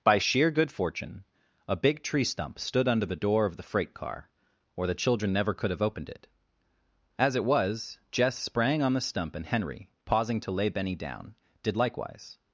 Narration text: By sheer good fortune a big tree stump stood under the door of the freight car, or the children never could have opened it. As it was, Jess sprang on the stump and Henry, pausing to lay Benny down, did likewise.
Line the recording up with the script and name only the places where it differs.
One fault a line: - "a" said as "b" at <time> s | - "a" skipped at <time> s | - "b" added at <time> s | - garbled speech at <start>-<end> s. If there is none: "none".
none